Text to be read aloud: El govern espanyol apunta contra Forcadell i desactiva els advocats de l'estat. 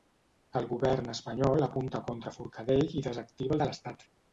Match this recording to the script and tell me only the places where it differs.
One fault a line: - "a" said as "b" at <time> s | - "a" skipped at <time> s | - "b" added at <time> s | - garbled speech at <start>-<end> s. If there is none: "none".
- "els advocats" skipped at 3.6 s